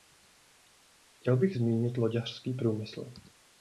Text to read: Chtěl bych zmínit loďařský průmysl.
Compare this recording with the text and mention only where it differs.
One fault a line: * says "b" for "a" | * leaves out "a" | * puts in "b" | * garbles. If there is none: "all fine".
all fine